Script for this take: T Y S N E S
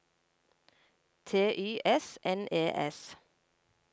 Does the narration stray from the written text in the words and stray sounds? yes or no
no